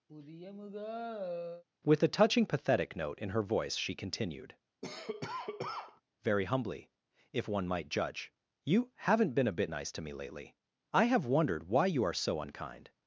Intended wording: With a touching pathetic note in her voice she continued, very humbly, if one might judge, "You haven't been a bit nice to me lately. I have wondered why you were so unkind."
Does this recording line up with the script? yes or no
no